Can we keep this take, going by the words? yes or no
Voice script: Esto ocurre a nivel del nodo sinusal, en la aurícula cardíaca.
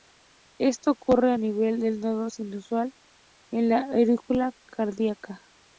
yes